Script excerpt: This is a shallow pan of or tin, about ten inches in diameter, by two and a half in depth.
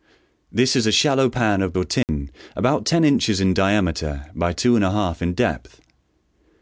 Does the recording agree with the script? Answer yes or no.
yes